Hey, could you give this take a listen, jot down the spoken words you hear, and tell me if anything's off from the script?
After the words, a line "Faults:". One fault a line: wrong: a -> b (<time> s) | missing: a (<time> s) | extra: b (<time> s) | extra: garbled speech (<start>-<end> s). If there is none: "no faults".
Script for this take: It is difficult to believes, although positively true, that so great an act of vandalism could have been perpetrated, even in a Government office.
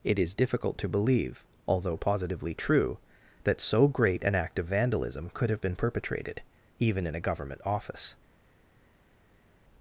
It is difficult to believe, although positively true, that so great an act of vandalism could have been perpetrated, even in a Government office.
Faults:
wrong: believes -> believe (0.9 s)